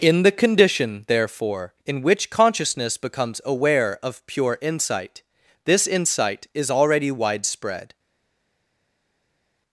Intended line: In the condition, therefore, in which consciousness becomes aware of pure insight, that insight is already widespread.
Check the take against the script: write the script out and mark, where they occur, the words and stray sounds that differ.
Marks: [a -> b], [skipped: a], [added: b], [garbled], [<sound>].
In the condition, therefore, in which consciousness becomes aware of pure insight, [that -> this] insight is already widespread.